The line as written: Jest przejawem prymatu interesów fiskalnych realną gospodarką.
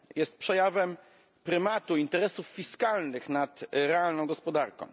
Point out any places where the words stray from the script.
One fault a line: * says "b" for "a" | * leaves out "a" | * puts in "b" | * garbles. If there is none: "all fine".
* puts in "nad"